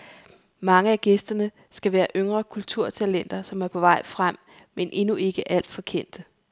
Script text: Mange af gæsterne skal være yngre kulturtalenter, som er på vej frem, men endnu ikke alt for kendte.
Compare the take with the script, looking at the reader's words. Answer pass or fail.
pass